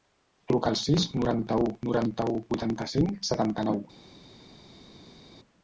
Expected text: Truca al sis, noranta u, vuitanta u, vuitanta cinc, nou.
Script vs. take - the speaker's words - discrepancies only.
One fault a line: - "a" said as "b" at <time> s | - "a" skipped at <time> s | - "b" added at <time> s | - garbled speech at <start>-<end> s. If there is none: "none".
- "vuitanta" said as "noranta" at 1.9 s
- "setanta" added at 3.3 s